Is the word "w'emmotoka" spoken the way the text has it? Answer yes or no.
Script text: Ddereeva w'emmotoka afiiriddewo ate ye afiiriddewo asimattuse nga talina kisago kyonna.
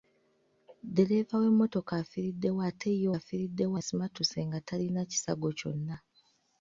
yes